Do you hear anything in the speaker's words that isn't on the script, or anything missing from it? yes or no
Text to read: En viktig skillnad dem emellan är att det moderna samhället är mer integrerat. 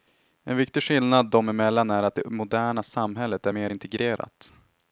no